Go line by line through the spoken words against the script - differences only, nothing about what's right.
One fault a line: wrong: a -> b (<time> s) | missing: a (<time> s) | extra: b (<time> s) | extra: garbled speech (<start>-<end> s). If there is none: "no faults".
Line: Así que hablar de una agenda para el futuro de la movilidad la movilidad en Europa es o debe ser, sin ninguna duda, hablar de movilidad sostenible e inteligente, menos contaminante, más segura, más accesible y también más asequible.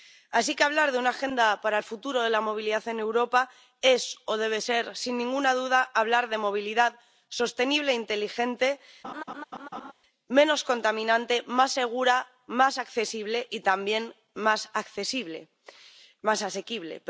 missing: la movilidad (2.9 s)